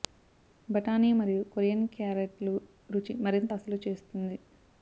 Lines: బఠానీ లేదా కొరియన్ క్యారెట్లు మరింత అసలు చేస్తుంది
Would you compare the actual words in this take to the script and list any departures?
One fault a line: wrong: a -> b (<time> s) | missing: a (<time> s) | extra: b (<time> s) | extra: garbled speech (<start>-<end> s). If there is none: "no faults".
wrong: లేదా -> మరియు (1.1 s)
extra: రుచి (2.9 s)